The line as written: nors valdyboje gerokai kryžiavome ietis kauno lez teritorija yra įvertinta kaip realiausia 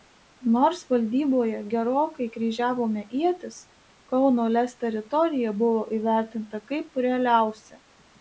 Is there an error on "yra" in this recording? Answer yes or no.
yes